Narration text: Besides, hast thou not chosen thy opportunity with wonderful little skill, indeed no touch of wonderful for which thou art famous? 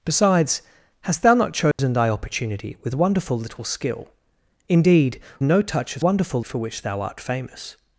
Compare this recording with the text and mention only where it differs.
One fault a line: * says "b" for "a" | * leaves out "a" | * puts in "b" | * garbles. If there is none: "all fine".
all fine